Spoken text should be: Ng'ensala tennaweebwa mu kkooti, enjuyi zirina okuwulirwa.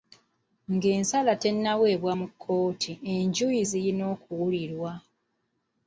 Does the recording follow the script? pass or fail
pass